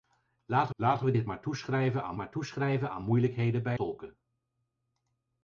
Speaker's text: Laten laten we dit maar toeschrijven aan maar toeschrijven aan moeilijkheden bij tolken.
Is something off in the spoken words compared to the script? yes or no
no